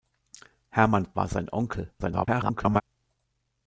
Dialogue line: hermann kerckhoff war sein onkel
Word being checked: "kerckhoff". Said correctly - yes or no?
no